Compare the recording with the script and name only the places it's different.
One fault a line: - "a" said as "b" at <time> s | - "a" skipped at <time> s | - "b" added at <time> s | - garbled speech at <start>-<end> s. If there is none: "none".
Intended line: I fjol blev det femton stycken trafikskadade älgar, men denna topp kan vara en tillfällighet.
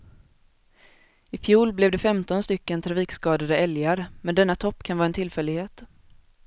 none